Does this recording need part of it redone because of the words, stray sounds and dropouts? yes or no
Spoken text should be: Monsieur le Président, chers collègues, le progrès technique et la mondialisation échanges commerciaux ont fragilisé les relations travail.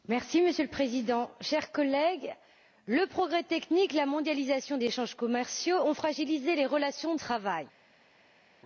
no